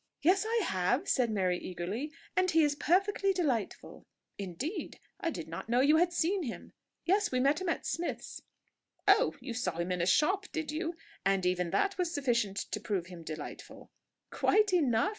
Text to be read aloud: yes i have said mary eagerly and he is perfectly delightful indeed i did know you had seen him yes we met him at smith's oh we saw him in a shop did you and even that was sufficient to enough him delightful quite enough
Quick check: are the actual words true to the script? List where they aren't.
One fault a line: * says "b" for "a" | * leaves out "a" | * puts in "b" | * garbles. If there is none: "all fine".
* puts in "not"
* says "you" for "we"
* says "prove" for "enough"